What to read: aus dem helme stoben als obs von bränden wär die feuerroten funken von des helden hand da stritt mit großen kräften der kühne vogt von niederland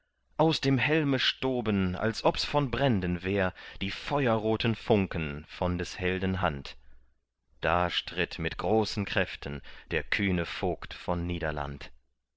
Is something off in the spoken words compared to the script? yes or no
no